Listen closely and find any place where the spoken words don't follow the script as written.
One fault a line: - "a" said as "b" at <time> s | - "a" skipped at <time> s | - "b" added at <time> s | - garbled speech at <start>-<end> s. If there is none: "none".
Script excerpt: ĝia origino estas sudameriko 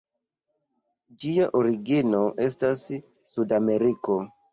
none